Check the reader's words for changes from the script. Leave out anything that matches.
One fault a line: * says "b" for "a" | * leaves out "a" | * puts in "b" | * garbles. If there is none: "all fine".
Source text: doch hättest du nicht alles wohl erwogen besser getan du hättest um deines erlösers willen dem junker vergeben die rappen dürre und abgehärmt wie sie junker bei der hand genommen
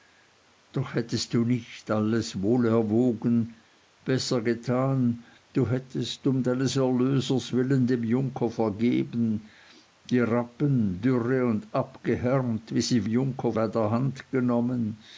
all fine